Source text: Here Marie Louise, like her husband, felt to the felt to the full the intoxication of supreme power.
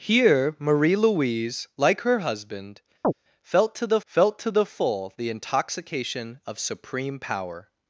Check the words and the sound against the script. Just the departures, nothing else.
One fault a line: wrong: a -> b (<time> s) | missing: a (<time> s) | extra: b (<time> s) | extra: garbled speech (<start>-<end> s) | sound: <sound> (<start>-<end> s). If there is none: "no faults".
sound: chirp (3.0-3.1 s)